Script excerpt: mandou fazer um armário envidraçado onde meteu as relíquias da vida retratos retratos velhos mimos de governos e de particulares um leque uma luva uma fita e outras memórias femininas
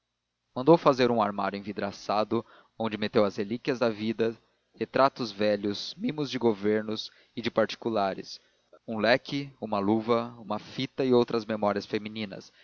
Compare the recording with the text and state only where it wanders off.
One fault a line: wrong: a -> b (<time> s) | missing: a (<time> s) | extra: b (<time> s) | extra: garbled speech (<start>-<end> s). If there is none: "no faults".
missing: retratos (5.3 s)